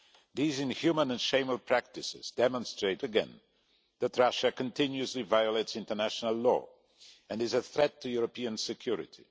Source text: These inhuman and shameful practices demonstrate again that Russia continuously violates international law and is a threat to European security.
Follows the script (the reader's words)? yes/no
yes